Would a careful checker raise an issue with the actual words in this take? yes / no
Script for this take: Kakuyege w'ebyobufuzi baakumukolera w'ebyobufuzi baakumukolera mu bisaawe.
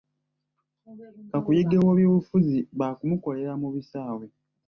yes